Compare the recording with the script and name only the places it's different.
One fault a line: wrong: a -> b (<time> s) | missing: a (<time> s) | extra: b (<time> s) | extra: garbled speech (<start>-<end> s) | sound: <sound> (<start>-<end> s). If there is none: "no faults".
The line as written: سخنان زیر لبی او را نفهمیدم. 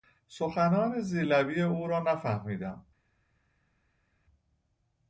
no faults